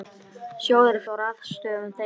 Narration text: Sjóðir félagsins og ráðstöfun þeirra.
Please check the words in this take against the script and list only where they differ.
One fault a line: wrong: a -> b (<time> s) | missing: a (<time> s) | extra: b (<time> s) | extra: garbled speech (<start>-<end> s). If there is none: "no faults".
missing: félagsins (1.0 s)